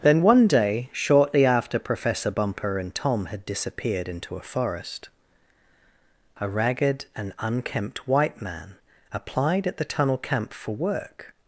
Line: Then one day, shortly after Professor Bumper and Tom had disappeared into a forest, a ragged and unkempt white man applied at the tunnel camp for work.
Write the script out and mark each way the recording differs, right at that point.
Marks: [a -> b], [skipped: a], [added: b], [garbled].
Then one day, shortly after Professor Bumper and Tom had disappeared into a forest, a ragged and unkempt white man applied at the tunnel camp for work.